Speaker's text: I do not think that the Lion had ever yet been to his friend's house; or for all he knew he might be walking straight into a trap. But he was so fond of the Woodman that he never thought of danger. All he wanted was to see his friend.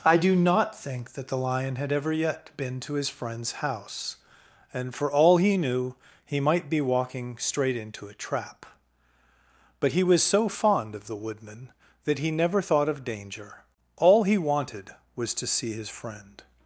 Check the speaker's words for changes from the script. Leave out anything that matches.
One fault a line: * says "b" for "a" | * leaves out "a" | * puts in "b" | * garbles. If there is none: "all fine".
* says "and" for "or"